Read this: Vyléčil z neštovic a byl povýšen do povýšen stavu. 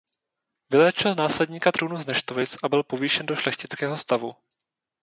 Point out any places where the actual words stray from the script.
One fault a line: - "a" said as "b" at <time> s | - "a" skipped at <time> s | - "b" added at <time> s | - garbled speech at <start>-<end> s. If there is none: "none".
- "následníka trůnu" added at 1.1 s
- "povýšen" said as "šlechtického" at 3.3 s